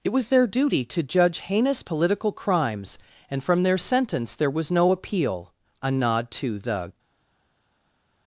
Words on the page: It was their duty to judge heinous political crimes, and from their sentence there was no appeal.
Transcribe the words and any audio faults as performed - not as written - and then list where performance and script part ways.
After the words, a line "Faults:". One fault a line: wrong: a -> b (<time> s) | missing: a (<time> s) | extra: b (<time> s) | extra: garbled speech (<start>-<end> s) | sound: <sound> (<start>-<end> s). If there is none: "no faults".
It was their duty to judge heinous political crimes, and from their sentence there was no appeal. A nod to the
Faults:
extra: A nod to the (5.8 s)